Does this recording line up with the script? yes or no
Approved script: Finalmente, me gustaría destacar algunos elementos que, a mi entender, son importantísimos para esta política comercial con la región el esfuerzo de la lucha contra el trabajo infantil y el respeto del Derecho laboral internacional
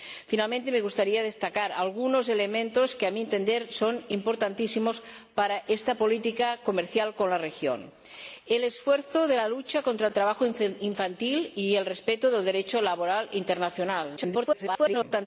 no